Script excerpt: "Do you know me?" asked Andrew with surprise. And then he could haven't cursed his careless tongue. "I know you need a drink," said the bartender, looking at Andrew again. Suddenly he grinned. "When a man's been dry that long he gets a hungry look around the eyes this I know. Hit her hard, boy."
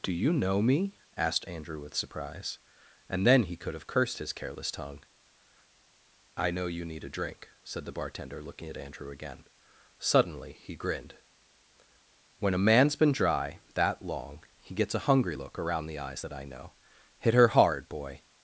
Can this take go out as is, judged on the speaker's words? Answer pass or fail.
fail